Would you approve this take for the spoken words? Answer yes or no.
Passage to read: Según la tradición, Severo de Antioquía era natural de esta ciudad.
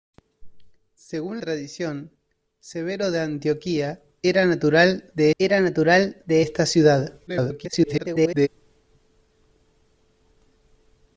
no